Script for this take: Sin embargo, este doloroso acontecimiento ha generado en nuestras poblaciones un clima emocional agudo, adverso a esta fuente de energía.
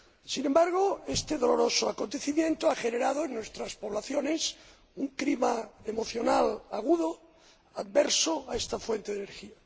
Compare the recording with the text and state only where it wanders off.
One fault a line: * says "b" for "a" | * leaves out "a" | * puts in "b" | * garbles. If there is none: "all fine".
all fine